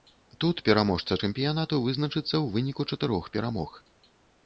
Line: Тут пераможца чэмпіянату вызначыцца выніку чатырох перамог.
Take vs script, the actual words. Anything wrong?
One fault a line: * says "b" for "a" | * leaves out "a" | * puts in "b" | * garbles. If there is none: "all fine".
* puts in "ў"